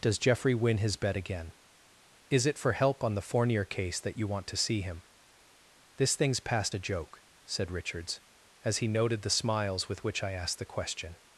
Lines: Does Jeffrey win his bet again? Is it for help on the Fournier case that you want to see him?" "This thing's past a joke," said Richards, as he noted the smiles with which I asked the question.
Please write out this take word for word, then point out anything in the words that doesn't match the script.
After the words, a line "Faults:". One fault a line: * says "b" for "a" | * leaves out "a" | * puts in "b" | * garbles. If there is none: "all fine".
Does Jeffrey win his bet again? Is it for help on the Fournier case that you want to see him?" "This thing's past a joke," said Richards, as he noted the smiles with which I asked the question.
Faults:
all fine